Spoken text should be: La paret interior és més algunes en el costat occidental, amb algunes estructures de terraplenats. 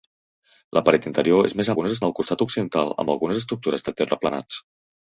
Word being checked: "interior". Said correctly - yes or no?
yes